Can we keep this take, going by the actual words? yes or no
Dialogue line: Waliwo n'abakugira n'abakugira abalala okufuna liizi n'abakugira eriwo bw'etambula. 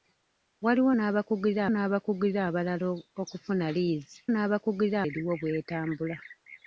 yes